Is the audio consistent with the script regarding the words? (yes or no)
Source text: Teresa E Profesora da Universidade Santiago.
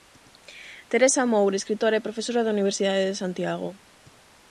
no